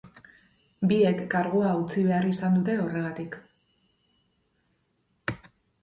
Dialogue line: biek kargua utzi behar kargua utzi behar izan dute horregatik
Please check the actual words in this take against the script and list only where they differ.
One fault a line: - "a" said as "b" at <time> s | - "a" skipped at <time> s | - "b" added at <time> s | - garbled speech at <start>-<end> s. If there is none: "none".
- "kargua utzi behar" skipped at 2.3 s